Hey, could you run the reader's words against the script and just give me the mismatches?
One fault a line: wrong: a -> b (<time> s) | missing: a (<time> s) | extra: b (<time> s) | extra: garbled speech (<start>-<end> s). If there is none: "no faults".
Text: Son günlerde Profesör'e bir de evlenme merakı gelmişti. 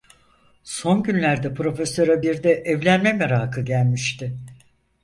no faults